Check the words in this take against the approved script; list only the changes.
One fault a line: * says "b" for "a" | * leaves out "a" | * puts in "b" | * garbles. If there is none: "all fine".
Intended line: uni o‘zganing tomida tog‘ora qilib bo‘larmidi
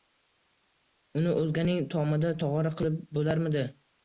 all fine